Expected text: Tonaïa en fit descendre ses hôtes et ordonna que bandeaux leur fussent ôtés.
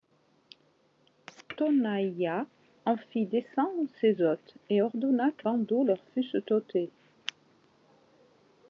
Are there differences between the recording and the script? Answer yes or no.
no